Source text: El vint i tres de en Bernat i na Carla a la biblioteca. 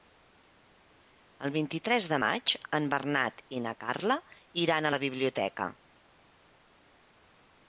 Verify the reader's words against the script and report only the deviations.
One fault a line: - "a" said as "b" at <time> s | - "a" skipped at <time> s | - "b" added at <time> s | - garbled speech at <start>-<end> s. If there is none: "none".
- "maig" added at 2.2 s
- "iran" added at 4.7 s